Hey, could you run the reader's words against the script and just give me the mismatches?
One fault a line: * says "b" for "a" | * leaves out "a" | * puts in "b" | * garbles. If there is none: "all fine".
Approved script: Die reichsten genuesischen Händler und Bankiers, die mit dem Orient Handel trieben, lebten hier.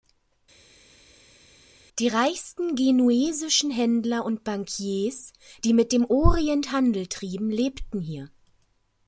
all fine